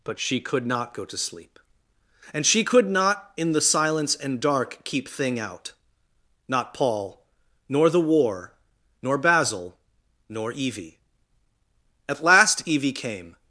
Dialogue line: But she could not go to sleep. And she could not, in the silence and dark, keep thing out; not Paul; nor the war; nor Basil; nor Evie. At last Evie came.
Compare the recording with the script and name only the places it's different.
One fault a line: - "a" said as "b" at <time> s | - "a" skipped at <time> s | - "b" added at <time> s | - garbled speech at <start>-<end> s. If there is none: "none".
none